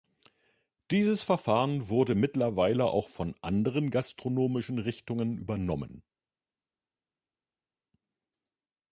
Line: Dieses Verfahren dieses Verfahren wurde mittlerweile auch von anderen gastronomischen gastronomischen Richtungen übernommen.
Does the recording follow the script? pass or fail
fail